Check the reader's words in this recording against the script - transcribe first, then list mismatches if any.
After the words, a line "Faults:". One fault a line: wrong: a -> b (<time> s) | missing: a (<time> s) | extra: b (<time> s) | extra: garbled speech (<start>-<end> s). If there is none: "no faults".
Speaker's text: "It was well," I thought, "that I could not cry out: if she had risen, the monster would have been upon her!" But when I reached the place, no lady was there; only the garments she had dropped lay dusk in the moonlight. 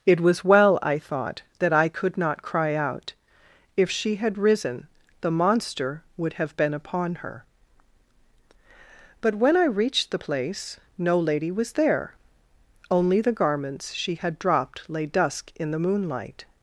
"It was well," I thought, "that I could not cry out: if she had risen, the monster would have been upon her!" But when I reached the place, no lady was there; only the garments she had dropped lay dusk in the moonlight.
Faults:
no faults